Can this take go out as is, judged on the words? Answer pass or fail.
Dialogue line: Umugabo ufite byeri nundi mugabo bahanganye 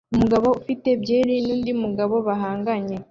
pass